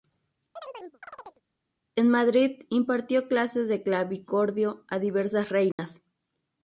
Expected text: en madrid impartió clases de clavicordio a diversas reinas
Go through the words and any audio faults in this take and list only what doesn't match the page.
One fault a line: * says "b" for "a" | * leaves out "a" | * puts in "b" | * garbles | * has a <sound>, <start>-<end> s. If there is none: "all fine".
* has a chirp, 0.6-1.4 s
* has a dropout, 5.7-5.8 s